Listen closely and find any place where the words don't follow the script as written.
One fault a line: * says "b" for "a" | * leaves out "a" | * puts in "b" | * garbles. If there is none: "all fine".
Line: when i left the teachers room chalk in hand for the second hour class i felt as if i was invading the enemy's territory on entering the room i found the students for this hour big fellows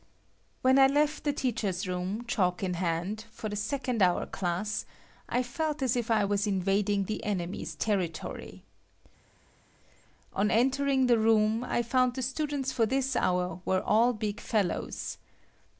* puts in "were all"